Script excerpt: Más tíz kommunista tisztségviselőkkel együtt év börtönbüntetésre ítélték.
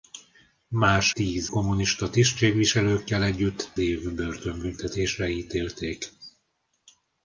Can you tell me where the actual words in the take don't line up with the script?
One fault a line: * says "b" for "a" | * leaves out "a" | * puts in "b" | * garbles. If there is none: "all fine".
all fine